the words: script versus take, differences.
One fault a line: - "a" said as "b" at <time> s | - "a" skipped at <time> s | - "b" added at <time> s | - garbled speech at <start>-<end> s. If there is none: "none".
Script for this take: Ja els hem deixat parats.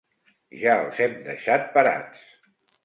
none